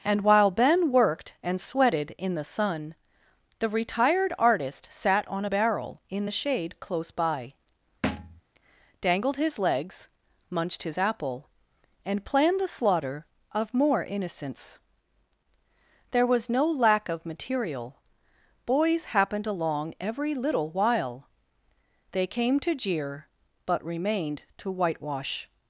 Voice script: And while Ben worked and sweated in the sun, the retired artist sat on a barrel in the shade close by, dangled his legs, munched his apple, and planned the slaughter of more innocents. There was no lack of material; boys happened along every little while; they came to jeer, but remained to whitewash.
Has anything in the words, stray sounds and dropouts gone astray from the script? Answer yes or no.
yes